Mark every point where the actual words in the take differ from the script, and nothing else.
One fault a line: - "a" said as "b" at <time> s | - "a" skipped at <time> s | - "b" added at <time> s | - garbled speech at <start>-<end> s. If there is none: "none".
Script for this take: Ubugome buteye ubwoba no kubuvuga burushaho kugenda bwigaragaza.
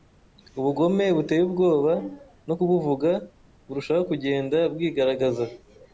none